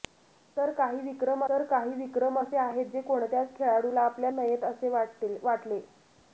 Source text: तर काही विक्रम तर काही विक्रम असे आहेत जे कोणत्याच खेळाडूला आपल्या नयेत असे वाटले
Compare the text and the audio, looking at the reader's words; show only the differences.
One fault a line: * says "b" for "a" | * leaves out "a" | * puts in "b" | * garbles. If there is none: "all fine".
all fine